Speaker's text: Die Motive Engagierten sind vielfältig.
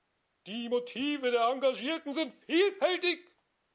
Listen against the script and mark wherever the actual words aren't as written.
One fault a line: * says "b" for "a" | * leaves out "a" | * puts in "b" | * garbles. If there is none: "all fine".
* puts in "der"